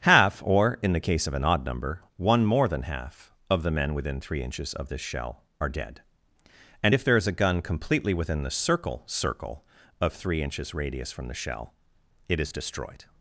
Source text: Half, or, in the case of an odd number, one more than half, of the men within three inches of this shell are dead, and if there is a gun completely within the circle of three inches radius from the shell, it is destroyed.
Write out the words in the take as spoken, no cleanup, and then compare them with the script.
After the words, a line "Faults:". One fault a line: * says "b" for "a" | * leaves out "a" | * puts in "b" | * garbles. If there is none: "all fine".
Half, or, in the case of an odd number, one more than half, of the men within three inches of this shell are dead, and if there is a gun completely within the circle circle of three inches radius from the shell, it is destroyed.
Faults:
* puts in "circle"